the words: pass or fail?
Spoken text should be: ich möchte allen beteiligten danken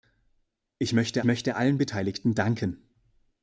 fail